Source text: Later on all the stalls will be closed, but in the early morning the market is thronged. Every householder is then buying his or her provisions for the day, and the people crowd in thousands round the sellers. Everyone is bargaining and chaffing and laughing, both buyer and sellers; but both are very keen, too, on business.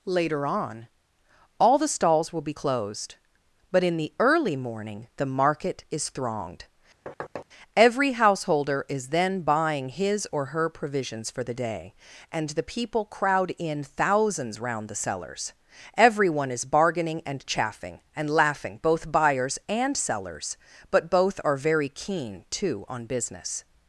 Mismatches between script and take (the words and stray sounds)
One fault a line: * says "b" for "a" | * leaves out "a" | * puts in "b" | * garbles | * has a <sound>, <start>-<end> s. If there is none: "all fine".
* has a thud, 7.1-7.5 s
* says "buyers" for "buyer"